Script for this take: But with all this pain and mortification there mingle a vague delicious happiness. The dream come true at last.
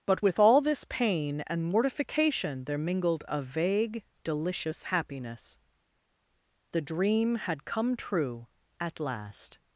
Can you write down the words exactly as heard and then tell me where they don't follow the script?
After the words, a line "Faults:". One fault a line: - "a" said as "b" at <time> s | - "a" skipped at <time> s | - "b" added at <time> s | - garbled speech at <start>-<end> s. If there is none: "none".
But with all this pain and mortification there mingled a vague delicious happiness. The dream had come true at last.
Faults:
- "mingle" said as "mingled" at 2.8 s
- "had" added at 7.4 s